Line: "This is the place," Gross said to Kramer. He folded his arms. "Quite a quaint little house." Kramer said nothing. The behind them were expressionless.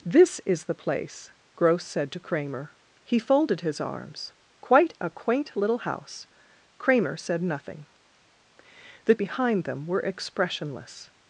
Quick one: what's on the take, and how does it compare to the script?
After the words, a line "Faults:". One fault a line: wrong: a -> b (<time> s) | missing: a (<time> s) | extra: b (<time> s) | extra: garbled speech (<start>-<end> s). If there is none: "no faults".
"This is the place," Gross said to Kramer. He folded his arms. "Quite a quaint little house." Kramer said nothing. The behind them were expressionless.
Faults:
no faults